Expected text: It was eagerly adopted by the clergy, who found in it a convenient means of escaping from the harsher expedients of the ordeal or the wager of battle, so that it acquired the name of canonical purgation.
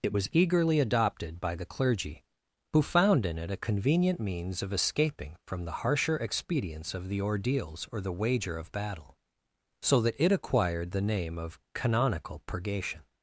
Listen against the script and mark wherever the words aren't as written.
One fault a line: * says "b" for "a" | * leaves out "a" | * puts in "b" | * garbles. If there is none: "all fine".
* says "ordeals" for "ordeal"